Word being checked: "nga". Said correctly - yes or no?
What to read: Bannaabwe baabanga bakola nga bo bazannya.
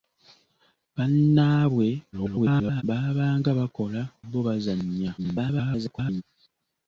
no